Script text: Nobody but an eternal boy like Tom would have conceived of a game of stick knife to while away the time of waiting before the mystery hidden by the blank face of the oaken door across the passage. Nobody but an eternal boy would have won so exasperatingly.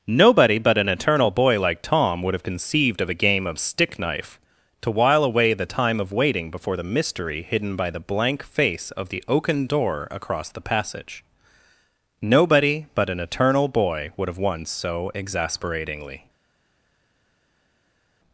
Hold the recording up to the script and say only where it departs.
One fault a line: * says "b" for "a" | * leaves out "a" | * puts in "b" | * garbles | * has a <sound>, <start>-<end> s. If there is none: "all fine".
all fine